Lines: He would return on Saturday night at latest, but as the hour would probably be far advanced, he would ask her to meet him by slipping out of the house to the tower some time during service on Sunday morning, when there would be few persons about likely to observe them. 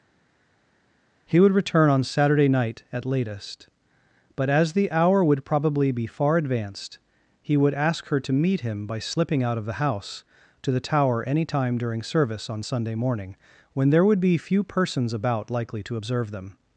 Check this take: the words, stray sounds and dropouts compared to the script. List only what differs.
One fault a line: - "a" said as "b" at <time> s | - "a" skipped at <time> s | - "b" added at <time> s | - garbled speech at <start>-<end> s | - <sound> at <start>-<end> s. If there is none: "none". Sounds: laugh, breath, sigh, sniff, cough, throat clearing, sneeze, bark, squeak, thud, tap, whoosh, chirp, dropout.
- "some" said as "any" at 11.2 s